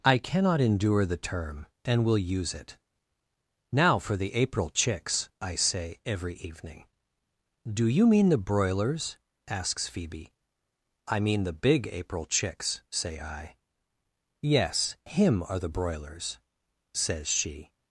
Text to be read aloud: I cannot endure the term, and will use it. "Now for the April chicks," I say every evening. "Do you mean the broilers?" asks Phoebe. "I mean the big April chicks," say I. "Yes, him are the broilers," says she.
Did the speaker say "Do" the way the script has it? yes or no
yes